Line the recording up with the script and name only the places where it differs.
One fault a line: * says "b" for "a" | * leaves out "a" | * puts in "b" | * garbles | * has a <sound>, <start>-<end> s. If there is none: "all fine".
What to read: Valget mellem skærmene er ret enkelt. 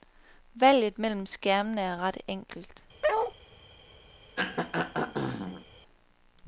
* has a bark, 3.0-3.3 s
* has a throat clearing, 4.4-5.7 s